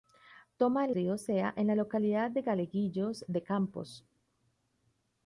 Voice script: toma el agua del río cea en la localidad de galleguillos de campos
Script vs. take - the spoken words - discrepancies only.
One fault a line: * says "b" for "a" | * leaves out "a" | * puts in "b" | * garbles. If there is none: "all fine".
* leaves out "agua del"